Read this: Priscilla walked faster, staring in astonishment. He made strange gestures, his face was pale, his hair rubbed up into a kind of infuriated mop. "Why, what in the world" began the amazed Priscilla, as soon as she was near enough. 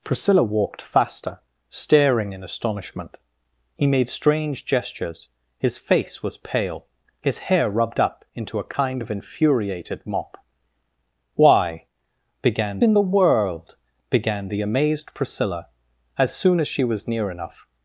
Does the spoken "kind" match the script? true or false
true